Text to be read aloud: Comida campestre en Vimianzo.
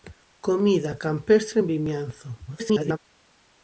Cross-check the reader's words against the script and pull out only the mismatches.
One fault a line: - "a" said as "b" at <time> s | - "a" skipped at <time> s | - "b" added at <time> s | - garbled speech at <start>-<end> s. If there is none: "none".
- garbled speech at 2.5-3.0 s